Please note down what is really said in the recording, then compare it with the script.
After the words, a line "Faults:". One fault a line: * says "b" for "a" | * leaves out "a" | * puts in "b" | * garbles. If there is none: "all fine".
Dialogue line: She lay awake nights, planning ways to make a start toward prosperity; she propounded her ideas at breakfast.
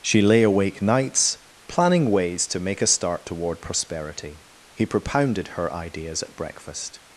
She lay awake nights, planning ways to make a start toward prosperity; he propounded her ideas at breakfast.
Faults:
* says "he" for "she"